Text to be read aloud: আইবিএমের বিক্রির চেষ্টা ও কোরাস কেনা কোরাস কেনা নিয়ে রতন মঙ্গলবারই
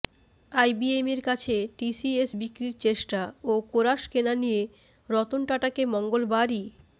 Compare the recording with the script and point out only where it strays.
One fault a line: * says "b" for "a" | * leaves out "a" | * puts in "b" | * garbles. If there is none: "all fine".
* puts in "কাছে টিসিএস"
* leaves out "কোরাস কেনা"
* puts in "টাটাকে"